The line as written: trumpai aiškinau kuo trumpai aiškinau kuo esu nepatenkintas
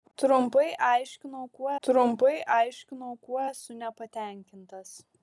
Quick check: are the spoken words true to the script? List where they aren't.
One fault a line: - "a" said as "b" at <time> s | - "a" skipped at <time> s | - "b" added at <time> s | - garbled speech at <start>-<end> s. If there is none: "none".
none